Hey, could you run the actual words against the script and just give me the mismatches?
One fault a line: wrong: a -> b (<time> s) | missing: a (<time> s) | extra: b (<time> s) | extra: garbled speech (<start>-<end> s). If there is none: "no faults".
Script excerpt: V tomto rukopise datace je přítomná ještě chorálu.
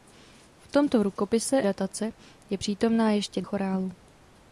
no faults